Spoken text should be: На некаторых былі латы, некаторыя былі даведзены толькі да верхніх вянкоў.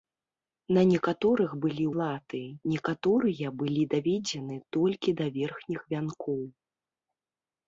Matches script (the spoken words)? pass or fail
pass